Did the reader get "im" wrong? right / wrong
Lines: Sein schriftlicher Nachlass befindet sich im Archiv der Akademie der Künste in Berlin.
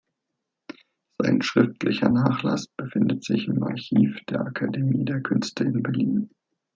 right